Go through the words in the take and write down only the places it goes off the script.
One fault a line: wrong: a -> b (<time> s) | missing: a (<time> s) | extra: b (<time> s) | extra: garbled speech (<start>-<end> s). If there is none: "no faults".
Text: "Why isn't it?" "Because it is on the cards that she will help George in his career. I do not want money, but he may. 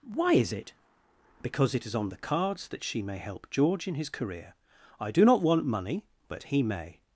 wrong: isn't -> is (0.3 s)
wrong: will -> may (3.0 s)